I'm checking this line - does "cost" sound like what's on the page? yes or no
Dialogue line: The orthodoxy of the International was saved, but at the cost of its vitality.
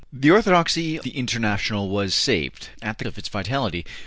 no